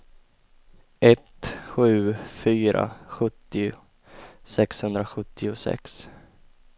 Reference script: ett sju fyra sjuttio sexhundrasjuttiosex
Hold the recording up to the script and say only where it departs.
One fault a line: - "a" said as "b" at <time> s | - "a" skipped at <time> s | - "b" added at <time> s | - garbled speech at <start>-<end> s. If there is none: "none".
none